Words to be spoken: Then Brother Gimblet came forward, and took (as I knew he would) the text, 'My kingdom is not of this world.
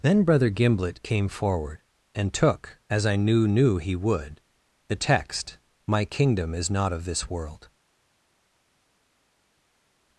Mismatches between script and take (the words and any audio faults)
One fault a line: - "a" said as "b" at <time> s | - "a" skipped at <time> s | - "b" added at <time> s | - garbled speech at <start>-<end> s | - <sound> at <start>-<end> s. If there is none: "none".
- "knew" added at 3.5 s